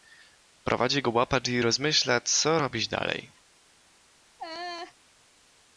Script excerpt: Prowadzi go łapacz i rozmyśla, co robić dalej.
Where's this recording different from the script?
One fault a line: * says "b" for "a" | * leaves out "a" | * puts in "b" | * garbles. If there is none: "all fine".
all fine